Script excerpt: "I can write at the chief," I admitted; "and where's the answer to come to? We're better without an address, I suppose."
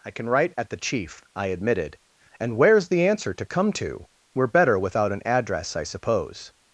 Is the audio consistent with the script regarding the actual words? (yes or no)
yes